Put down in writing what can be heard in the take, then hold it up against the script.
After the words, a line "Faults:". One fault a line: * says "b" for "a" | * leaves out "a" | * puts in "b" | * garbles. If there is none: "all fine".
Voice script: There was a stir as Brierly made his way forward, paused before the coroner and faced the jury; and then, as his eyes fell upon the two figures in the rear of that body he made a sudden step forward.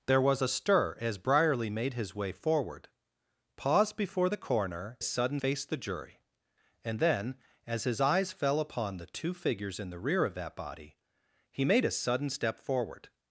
There was a stir as Brierly made his way forward, paused before the coroner sudden faced the jury; and then, as his eyes fell upon the two figures in the rear of that body he made a sudden step forward.
Faults:
* says "sudden" for "and"